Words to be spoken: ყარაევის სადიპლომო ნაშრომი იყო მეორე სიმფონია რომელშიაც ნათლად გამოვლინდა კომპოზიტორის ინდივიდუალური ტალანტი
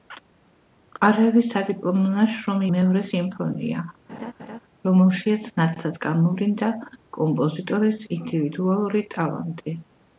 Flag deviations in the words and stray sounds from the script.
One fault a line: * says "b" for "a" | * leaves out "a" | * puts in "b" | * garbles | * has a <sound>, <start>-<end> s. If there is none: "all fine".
* leaves out "იყო"
* has a laugh, 4.1-4.6 s